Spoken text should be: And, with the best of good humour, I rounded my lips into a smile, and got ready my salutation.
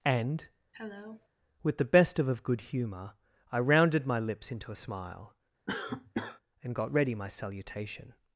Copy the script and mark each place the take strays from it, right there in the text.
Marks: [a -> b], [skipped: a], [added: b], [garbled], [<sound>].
And, [cough] with the best of [added: of] good humour, I rounded my lips into a smile, [cough] and got ready my salutation.